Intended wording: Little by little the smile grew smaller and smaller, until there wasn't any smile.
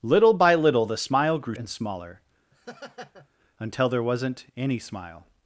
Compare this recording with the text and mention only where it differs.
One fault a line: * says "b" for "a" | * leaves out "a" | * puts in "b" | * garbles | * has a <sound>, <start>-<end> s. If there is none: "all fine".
* leaves out "smaller"
* has a laugh, 2.5-3.3 s